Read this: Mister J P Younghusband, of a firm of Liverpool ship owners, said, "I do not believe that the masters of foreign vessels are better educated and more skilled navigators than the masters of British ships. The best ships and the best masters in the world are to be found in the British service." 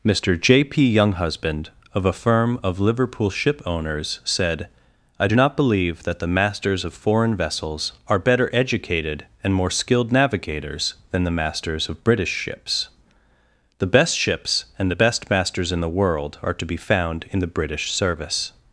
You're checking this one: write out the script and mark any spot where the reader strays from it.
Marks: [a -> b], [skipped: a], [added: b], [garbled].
Mister J P Younghusband, of a firm of Liverpool ship owners, said, "I do not believe that the masters of foreign vessels are better educated and more skilled navigators than the masters of British ships. The best ships and the best masters in the world are to be found in the British service."